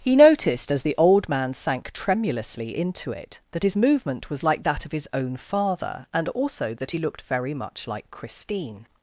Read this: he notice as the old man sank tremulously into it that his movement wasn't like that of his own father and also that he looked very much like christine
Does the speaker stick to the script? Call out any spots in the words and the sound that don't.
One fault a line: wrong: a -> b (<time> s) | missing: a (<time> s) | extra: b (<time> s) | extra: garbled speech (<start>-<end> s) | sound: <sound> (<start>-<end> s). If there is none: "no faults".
wrong: notice -> noticed (0.1 s)
wrong: wasn't -> was (4.3 s)